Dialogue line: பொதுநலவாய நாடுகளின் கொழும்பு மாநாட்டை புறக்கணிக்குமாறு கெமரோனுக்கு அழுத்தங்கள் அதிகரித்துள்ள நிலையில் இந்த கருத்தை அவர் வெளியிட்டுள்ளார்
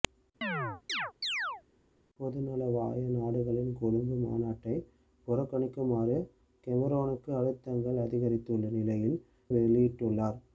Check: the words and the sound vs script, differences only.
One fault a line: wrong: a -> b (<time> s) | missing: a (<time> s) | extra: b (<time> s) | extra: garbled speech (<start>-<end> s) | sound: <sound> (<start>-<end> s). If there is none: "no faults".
sound: chirp (0.4-1.6 s)
missing: இந்த கருத்தை அவர் (9.2 s)